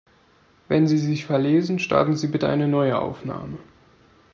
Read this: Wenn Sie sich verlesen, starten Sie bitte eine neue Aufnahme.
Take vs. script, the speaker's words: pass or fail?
pass